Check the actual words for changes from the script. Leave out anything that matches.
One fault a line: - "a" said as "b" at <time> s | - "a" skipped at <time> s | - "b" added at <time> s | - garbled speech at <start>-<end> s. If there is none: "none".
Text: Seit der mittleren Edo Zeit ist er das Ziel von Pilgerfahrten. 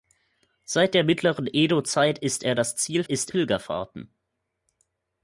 - "von" said as "ist" at 3.0 s